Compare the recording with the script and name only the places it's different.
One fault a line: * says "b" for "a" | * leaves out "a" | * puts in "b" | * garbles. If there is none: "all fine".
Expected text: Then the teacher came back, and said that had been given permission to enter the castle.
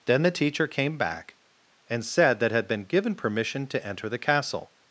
all fine